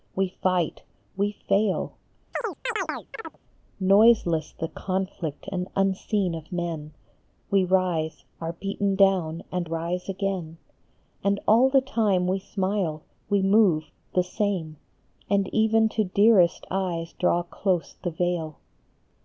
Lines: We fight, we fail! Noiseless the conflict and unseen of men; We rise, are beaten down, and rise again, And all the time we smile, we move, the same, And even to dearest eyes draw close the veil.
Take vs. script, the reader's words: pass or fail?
pass